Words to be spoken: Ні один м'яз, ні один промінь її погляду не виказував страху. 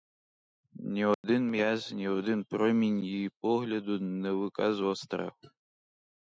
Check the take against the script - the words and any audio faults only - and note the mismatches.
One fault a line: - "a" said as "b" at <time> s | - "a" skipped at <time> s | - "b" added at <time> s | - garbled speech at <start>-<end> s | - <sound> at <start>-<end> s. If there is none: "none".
- dropout at 1.1-1.2 s